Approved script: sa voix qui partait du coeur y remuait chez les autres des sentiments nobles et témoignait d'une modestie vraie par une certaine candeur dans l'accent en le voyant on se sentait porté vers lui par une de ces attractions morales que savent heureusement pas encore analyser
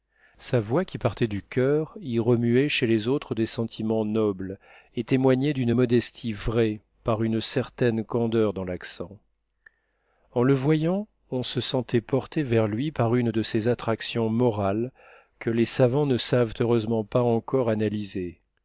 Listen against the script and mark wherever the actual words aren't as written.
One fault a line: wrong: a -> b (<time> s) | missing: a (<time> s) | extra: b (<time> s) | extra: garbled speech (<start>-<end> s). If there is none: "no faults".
extra: les savants ne (15.5 s)